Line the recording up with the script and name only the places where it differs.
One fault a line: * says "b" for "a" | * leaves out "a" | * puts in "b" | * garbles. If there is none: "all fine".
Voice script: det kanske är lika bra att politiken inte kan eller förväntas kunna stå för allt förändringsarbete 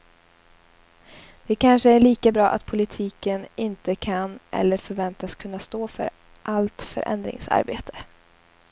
all fine